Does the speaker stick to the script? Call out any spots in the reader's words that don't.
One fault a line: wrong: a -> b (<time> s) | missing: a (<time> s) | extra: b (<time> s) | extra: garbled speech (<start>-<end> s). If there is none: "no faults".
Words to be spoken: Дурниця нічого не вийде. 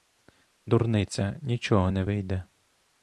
no faults